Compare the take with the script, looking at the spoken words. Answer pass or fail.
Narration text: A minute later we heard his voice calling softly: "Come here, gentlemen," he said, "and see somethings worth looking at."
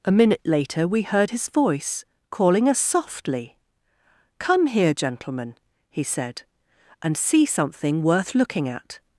fail